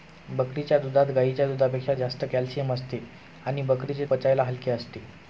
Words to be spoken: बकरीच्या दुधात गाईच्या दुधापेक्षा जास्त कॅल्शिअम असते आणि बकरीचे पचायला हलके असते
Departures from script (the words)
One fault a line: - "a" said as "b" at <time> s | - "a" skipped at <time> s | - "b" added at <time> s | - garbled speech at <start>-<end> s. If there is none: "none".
none